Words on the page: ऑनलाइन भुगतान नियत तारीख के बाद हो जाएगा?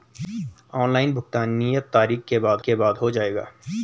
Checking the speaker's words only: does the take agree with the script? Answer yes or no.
no